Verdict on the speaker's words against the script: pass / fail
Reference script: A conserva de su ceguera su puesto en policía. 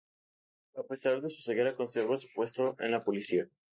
fail